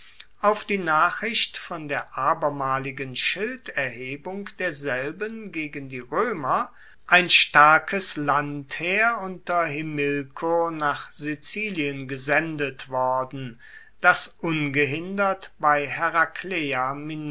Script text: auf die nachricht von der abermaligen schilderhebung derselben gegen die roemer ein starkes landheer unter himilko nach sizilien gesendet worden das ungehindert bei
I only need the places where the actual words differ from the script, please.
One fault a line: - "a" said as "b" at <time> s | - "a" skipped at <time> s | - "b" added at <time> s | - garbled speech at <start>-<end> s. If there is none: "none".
none